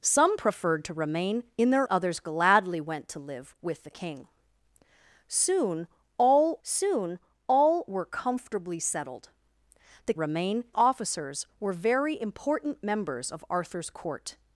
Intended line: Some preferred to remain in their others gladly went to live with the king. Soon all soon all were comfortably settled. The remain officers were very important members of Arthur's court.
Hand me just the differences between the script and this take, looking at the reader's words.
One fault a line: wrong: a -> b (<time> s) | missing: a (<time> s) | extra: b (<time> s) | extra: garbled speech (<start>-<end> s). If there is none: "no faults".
no faults